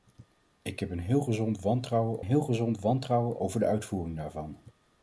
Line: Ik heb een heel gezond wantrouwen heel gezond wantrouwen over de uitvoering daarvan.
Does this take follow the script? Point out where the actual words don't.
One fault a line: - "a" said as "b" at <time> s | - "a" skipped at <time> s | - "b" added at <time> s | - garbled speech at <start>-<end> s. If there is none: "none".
none